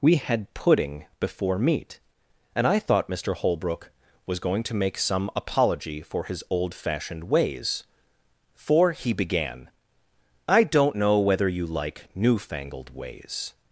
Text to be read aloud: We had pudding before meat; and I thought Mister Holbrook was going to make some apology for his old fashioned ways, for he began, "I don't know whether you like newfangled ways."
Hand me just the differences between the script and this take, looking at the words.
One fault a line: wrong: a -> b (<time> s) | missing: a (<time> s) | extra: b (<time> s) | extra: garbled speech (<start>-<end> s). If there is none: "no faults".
no faults